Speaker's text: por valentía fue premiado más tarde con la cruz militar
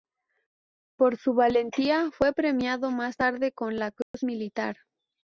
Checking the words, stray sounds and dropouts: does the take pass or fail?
fail